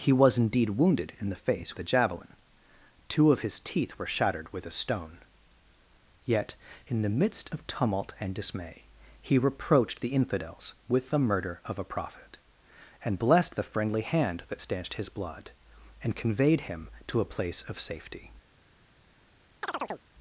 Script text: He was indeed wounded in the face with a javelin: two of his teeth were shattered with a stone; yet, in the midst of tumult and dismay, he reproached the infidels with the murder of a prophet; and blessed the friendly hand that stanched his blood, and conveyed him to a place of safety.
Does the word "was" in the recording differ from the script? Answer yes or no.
no